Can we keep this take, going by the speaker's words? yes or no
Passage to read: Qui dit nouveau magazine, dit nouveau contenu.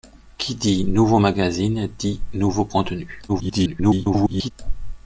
no